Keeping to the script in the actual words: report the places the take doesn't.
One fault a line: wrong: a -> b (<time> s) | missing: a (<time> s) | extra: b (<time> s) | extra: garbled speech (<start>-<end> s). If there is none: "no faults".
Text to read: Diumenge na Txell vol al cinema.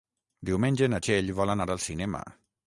extra: anar (1.6 s)